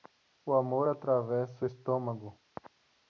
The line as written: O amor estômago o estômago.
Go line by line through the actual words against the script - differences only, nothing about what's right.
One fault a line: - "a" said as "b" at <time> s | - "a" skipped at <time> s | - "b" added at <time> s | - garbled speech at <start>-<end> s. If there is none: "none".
- "estômago" said as "atravessa" at 0.9 s